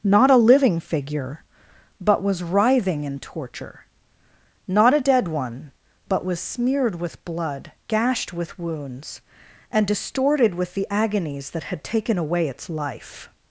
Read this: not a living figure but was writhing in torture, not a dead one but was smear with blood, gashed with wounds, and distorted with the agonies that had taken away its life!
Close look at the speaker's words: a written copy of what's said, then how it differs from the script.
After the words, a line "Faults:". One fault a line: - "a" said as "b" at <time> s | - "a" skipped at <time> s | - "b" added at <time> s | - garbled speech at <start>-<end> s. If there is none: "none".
not a living figure but was writhing in torture, not a dead one but was smeared with blood, gashed with wounds, and distorted with the agonies that had taken away its life!
Faults:
- "smear" said as "smeared" at 6.4 s